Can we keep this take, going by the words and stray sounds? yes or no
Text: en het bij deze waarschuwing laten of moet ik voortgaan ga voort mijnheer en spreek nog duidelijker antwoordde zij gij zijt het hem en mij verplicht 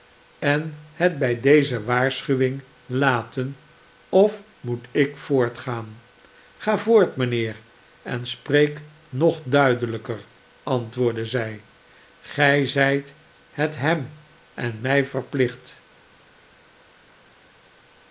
yes